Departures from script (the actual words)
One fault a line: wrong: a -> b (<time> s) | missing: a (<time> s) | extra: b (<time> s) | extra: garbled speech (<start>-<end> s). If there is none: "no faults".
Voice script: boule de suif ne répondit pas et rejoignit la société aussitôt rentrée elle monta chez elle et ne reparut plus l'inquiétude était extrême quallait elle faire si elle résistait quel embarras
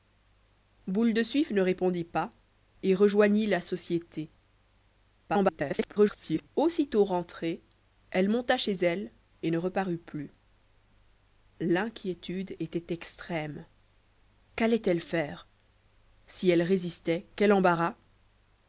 extra: garbled speech (5.3-6.5 s)